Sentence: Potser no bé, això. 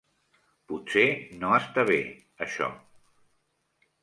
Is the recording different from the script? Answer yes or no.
yes